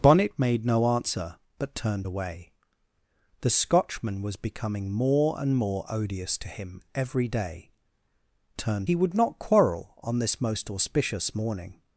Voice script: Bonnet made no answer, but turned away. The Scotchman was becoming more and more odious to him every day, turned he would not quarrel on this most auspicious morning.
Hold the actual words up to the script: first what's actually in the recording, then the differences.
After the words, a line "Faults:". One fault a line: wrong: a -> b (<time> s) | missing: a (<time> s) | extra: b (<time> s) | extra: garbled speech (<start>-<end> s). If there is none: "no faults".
Bonnet made no answer, but turned away. The Scotchman was becoming more and more odious to him every day, turned he would not quarrel on this most auspicious morning.
Faults:
no faults